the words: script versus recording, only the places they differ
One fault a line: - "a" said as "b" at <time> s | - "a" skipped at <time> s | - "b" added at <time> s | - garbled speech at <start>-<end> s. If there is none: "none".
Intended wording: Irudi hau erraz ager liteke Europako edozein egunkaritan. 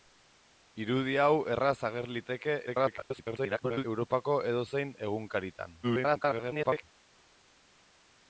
- garbled speech at 2.7-3.8 s
- garbled speech at 5.8-6.8 s